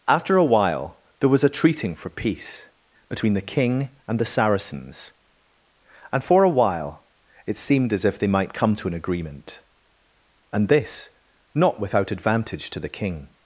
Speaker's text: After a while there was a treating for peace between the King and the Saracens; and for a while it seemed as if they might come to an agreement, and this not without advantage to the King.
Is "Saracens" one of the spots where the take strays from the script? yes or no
no